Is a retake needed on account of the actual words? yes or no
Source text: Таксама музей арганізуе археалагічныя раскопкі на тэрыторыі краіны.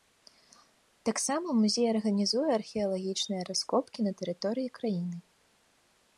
no